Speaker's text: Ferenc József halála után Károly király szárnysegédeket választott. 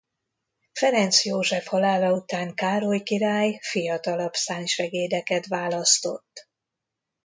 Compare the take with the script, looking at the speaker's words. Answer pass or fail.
fail